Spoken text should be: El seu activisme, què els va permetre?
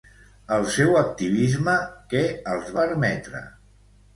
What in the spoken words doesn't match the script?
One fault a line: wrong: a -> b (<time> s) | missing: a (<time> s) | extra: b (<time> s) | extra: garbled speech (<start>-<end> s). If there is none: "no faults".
missing: va (2.8 s)